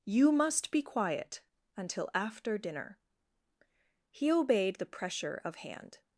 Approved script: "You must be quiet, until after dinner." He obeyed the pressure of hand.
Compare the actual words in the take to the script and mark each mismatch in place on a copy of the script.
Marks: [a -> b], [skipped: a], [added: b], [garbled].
"You must be quiet, until after dinner." He obeyed the pressure of hand.